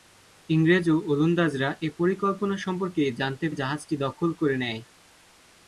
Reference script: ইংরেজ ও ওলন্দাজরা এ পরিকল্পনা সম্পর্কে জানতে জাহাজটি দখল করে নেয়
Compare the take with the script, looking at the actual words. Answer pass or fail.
pass